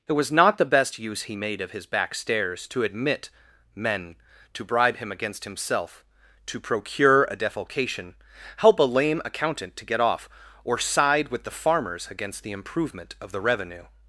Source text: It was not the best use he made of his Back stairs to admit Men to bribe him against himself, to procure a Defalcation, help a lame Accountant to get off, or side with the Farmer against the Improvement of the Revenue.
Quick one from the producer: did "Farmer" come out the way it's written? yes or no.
no